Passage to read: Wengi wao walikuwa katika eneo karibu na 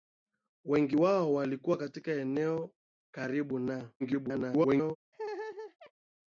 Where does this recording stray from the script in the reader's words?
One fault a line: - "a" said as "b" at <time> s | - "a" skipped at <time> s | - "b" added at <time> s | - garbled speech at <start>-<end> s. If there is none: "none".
- garbled speech at 4.0-5.0 s